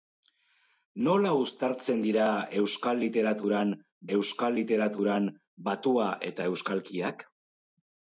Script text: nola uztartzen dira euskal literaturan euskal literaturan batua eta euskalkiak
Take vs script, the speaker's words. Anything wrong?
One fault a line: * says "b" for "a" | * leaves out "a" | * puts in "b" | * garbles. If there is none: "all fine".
all fine